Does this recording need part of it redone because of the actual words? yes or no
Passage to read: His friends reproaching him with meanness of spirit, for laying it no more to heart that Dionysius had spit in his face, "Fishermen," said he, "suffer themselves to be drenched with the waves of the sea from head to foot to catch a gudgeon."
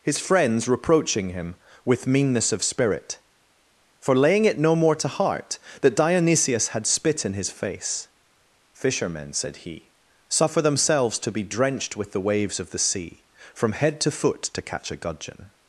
no